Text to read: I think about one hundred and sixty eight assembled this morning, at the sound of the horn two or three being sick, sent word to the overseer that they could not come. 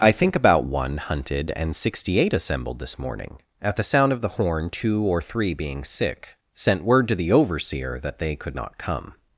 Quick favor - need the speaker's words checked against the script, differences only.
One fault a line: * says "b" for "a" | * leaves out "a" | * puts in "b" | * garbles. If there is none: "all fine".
* says "hunted" for "hundred"